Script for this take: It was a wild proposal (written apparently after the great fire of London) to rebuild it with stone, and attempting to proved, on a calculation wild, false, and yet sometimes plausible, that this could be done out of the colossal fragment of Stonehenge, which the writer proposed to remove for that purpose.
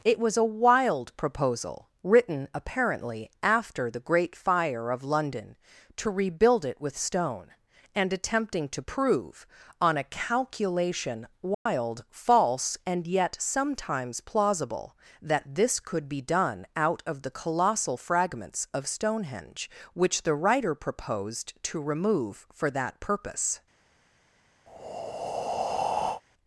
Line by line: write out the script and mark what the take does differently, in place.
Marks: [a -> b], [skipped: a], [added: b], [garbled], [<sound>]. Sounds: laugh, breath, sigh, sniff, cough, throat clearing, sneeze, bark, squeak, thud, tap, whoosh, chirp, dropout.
It was a wild proposal (written apparently after the great fire of London) to rebuild it with stone, and attempting to [proved, -> prove] on a calculation wild, [dropout] false, and yet sometimes plausible, that this could be done out of the colossal [fragment -> fragments] of Stonehenge, which the writer proposed to remove for that purpose. [breath]